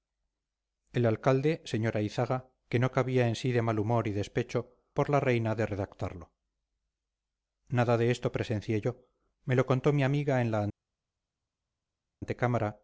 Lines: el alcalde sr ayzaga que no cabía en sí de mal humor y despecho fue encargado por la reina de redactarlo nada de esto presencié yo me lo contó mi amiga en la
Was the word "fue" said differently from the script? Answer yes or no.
yes